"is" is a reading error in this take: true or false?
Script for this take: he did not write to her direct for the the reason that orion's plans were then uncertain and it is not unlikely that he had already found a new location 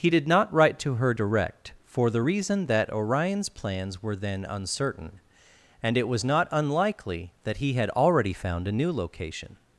true